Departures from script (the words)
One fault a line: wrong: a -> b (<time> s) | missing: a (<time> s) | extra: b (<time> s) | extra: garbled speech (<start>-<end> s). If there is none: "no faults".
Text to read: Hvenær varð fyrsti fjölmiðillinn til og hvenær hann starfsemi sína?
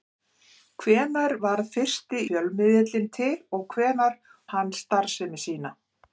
no faults